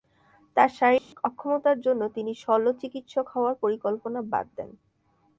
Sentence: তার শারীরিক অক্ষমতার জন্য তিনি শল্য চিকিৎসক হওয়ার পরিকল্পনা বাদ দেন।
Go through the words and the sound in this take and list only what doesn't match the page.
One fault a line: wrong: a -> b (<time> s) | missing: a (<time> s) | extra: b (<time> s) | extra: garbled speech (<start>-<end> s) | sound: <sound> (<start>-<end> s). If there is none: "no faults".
sound: dropout (1.0-1.1 s)